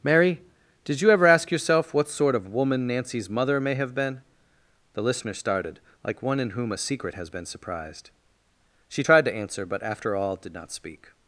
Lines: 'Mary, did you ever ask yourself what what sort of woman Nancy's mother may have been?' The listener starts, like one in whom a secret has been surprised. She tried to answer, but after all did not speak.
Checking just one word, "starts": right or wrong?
wrong